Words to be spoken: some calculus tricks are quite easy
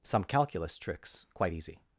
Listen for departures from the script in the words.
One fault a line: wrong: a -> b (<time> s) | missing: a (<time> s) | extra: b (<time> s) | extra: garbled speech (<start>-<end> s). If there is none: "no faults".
missing: are (1.3 s)